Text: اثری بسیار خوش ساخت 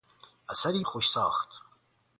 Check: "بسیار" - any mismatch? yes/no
yes